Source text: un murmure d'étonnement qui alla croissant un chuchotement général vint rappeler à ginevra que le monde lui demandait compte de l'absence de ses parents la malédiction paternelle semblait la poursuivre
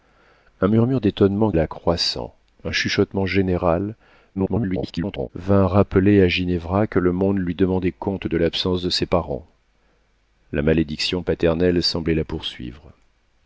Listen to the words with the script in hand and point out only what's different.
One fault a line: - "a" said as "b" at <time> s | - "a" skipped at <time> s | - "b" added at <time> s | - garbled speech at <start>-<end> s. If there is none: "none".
- "qui" skipped at 1.5 s
- garbled speech at 4.3-5.3 s